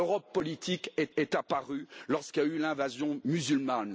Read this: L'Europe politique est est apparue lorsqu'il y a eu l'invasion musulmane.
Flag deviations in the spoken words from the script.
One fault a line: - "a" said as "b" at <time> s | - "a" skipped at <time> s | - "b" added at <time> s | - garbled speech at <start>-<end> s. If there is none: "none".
none